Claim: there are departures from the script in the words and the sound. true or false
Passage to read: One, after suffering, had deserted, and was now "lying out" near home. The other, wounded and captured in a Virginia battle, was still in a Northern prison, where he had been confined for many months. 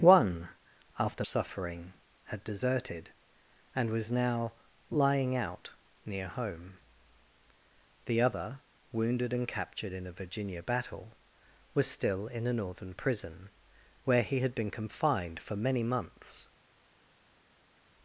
false